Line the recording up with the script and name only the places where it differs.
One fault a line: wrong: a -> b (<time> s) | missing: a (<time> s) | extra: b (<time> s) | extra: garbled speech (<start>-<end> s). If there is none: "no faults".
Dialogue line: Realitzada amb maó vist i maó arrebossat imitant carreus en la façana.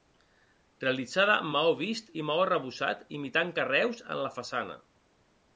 no faults